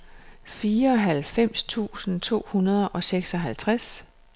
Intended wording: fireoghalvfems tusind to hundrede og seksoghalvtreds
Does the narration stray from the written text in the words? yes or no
no